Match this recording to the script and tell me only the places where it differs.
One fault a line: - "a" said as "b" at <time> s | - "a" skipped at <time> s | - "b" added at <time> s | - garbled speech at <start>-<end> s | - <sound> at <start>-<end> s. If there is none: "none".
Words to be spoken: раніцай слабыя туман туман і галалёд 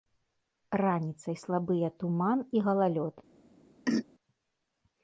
- "туман" skipped at 2.4 s
- throat clearing at 3.9-4.1 s